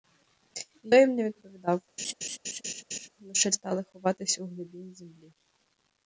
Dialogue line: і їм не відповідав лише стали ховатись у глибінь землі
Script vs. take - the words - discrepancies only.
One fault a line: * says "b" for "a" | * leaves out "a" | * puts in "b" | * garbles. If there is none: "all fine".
all fine